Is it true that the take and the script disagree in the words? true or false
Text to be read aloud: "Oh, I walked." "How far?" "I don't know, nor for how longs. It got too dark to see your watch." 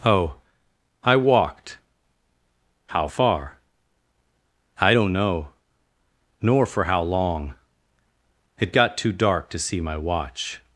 true